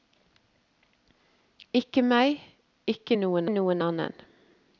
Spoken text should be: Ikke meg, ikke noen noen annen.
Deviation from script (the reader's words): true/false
false